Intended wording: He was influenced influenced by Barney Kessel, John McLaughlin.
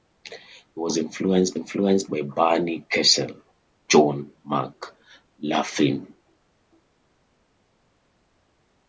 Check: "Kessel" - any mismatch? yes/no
no